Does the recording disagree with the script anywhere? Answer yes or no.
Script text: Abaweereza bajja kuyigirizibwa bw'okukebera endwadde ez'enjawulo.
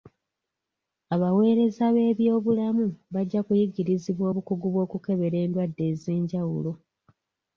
yes